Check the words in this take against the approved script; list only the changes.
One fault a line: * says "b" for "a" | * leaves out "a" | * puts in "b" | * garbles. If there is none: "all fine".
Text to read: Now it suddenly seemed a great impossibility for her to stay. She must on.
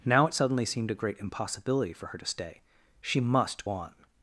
all fine